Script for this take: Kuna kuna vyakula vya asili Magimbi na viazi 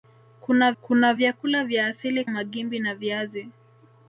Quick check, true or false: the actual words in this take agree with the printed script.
true